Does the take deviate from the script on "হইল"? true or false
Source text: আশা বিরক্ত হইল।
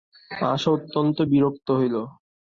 false